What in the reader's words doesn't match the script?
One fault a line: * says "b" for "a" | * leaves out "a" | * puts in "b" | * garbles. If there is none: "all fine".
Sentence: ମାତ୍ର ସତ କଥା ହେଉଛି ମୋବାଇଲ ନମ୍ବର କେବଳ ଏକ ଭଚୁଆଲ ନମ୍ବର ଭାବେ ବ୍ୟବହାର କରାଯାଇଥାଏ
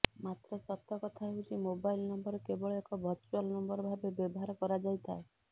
all fine